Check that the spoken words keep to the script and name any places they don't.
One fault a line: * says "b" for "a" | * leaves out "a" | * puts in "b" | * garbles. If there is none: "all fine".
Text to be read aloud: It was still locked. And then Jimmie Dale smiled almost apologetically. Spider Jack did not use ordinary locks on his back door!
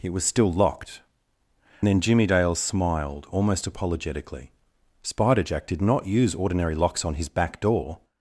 * leaves out "And"